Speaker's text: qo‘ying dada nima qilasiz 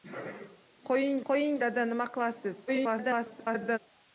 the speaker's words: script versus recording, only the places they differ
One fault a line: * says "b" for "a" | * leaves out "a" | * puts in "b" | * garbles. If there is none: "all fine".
* puts in "qo‘ying"
* garbles